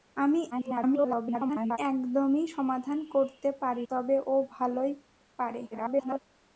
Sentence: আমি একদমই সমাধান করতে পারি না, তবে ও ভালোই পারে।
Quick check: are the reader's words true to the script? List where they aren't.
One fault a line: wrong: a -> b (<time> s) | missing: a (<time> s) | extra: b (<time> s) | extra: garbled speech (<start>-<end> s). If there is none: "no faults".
extra: garbled speech (0.5-1.8 s)
missing: না (3.9 s)
extra: garbled speech (5.7-6.2 s)